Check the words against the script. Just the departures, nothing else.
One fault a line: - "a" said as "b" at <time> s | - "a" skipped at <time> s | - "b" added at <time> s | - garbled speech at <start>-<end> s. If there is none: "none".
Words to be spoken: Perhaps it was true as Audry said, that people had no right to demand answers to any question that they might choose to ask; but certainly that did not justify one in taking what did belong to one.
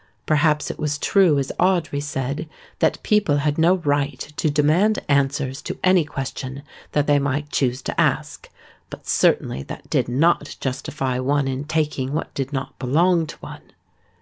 - "not" added at 12.5 s